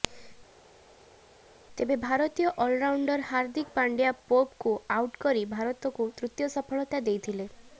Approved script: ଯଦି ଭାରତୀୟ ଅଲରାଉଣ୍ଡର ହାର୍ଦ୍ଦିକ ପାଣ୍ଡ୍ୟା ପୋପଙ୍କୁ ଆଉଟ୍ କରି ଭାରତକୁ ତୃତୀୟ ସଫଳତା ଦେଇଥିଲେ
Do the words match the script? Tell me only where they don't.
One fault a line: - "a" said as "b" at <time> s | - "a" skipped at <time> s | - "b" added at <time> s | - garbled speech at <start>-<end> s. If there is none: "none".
- "ଯଦି" said as "ତେବେ" at 1.8 s